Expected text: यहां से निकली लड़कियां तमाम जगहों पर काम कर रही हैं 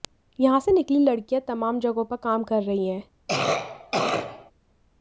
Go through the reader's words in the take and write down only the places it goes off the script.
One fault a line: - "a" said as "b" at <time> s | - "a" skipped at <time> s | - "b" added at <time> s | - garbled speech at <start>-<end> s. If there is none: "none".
none